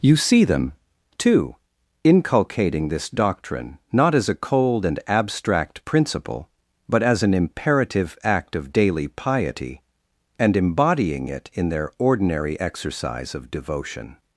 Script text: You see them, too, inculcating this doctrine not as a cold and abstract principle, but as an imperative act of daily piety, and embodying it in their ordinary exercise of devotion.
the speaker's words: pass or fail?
pass